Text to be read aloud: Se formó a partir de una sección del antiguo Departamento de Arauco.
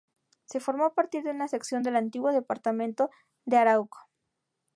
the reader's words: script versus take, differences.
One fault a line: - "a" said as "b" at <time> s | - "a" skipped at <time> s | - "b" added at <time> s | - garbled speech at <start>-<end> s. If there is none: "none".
none